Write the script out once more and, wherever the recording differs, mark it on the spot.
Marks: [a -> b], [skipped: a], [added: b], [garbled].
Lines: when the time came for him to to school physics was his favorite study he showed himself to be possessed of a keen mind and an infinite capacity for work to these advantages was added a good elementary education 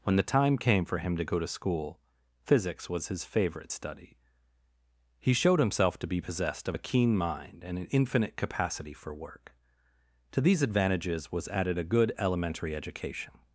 when the time came for him to [added: go] to school physics was his favorite study he showed himself to be possessed of a keen mind and an infinite capacity for work to these advantages was added a good elementary education